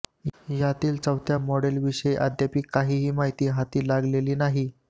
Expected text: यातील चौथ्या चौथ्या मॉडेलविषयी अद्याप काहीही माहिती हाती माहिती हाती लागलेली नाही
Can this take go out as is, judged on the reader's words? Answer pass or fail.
fail